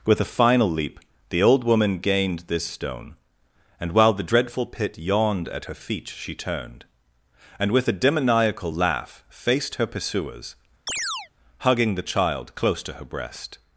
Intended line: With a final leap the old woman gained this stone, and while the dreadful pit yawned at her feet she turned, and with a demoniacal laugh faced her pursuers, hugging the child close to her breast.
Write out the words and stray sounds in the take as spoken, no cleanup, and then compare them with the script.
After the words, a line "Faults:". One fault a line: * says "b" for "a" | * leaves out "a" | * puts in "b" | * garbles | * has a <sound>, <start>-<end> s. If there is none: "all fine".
With a final leap the old woman gained this stone, and while the dreadful pit yawned at her feet she turned, and with a demoniacal laugh faced her pursuers, hugging the child close to her breast.
Faults:
* has a chirp, 10.9-11.3 s